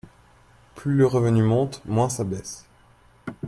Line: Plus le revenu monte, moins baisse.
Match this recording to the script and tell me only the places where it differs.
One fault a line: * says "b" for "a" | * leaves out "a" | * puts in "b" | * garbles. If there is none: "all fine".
* puts in "ça"